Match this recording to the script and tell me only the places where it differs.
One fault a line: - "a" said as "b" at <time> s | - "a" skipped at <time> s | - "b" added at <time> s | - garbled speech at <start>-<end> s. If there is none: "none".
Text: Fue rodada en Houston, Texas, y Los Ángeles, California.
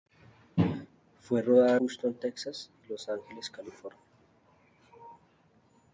- "en" skipped at 1.8 s